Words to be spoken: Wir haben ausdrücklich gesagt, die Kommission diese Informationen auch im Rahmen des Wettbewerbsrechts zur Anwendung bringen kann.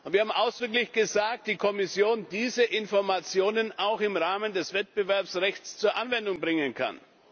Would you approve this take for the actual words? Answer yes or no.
yes